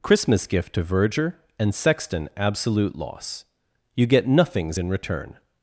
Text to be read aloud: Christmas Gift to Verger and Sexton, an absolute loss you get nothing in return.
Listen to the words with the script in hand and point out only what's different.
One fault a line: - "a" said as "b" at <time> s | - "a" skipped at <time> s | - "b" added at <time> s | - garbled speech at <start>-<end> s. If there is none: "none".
- "an" skipped at 2.3 s
- "nothing" said as "nothings" at 4.3 s